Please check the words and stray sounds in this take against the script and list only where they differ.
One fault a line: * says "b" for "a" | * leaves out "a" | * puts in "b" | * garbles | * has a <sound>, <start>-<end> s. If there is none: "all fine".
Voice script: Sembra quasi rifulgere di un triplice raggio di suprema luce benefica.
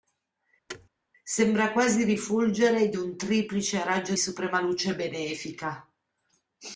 * has a thud, 0.7-0.9 s
* leaves out "di"